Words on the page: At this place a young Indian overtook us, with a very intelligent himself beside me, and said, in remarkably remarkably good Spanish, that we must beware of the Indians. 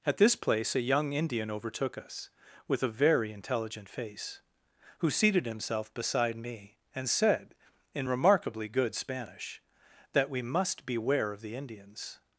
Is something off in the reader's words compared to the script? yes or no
yes